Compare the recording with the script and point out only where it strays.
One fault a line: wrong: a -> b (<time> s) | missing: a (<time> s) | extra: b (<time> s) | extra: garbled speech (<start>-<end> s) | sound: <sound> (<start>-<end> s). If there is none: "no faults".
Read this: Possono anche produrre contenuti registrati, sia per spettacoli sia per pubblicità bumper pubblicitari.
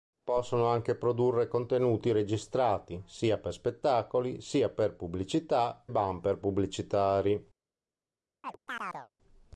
sound: chirp (8.4-9.1 s)